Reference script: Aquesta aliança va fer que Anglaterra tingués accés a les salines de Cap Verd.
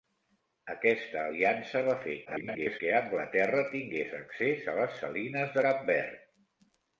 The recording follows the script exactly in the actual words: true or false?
false